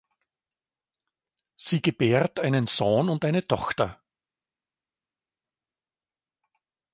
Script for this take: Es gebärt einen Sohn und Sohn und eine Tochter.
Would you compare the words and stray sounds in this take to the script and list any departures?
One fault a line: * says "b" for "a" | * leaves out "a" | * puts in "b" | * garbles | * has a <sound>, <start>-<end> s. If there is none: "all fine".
* says "Sie" for "Es"
* leaves out "Sohn und"